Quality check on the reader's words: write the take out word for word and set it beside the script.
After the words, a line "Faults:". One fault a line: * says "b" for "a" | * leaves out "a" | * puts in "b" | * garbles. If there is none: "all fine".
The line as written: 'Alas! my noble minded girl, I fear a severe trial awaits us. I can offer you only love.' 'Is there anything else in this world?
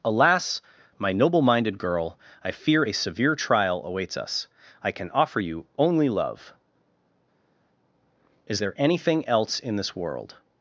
'Alas! my noble minded girl, I fear a severe trial awaits us. I can offer you only love.' 'Is there anything else in this world?
Faults:
all fine